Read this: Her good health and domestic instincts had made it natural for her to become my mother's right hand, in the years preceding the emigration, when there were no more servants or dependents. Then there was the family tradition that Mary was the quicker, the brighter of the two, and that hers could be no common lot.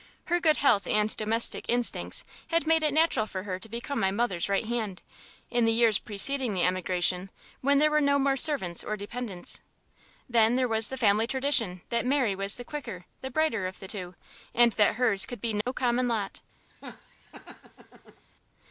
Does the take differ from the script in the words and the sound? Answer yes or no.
yes